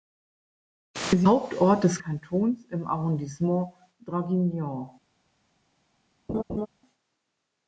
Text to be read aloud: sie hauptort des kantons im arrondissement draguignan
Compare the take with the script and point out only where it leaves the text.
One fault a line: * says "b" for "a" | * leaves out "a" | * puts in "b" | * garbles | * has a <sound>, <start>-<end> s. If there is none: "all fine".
* has a laugh, 6.3-6.7 s